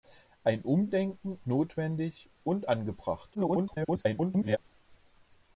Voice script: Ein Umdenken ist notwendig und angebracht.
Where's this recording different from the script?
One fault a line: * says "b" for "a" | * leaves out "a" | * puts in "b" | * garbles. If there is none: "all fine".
* leaves out "ist"
* garbles